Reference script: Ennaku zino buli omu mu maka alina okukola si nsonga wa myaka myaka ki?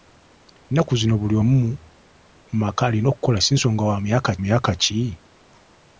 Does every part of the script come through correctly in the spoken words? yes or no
yes